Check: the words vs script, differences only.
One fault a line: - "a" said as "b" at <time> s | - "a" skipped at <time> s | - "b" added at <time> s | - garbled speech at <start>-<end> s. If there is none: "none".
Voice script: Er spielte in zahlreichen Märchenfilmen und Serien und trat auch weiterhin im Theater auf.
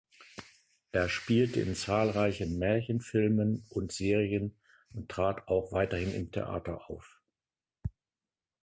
none